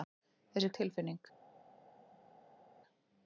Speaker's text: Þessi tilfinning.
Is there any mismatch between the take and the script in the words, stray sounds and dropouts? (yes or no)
no